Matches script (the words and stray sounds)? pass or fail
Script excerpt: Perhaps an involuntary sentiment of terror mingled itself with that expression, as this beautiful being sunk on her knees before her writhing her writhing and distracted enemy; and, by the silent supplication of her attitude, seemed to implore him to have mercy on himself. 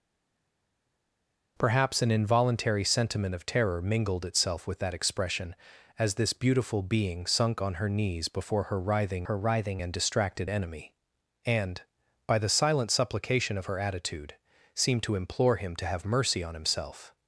pass